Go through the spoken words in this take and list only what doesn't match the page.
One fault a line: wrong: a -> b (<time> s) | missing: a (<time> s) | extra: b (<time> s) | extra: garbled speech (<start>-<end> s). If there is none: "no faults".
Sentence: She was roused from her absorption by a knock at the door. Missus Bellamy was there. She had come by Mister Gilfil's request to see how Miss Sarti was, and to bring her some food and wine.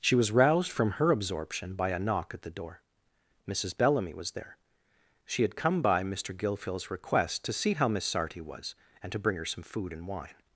no faults